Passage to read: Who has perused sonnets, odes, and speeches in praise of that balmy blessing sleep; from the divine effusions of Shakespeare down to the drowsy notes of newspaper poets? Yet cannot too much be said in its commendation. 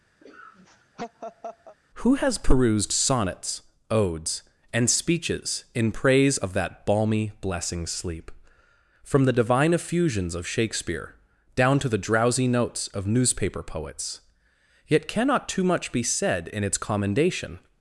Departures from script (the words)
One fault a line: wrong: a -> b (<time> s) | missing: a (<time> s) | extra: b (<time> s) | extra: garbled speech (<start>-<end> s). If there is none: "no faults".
no faults